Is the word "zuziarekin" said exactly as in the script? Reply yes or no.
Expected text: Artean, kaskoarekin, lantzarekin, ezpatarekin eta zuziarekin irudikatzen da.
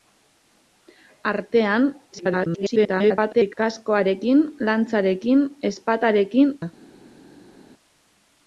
no